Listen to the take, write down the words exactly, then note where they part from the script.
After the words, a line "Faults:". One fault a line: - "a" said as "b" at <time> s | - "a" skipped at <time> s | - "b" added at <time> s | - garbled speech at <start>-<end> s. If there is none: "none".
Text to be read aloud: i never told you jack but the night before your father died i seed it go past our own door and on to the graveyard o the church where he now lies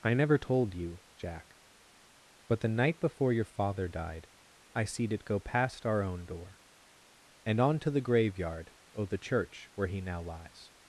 i never told you jack but the night before your father died i seed it go past our own door and on to the graveyard o the church where he now lies
Faults:
none